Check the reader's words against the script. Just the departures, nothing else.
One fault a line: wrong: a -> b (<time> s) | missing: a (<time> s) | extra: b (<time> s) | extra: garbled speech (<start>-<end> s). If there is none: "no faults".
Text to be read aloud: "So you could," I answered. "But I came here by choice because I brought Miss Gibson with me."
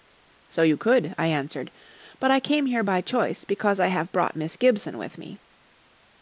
extra: have (3.9 s)